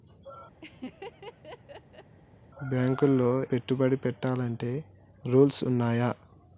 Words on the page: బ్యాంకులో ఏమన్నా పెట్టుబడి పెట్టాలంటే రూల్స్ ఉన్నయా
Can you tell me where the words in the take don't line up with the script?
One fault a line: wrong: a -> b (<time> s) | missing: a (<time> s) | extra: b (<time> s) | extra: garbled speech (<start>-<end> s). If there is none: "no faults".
missing: ఏమన్నా (3.3 s)